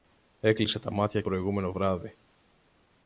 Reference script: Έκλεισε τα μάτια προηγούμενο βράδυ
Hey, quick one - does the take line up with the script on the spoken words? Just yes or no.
yes